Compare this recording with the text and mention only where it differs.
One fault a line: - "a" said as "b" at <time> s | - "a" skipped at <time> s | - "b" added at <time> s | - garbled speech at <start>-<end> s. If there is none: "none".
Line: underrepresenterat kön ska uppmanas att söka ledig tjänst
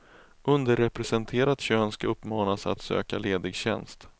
none